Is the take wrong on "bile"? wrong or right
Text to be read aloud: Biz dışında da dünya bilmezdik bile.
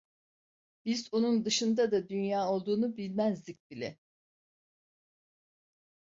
right